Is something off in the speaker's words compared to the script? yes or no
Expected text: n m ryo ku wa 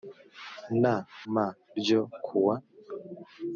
no